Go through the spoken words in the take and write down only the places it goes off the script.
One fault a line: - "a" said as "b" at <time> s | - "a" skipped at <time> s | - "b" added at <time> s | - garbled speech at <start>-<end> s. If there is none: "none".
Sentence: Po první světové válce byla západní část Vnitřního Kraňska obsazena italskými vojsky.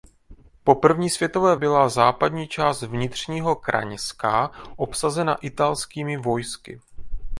- "válce" skipped at 1.6 s